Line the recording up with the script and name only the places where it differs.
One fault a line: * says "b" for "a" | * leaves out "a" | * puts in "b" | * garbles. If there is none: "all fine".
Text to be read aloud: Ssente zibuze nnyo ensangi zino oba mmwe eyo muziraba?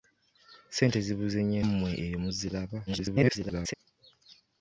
* leaves out "ensangi zino oba"
* garbles